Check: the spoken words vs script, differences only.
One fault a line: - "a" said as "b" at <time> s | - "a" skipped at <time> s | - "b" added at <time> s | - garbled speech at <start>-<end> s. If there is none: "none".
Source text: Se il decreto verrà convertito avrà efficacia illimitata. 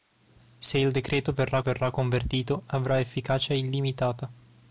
- "verrà" added at 1.6 s